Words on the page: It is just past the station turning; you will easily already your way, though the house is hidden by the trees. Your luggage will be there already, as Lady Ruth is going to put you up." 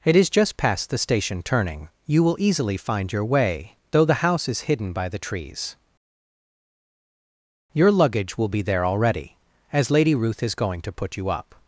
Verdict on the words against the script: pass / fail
fail